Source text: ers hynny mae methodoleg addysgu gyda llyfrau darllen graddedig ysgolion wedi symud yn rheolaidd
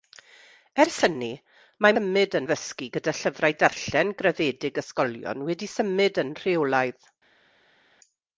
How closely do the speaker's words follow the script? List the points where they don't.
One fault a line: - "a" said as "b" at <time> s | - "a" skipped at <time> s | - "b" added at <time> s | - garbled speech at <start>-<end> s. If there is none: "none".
- "methodoleg" said as "symud" at 2.0 s